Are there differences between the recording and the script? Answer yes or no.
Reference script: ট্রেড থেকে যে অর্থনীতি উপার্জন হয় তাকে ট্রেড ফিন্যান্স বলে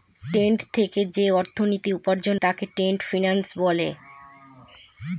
yes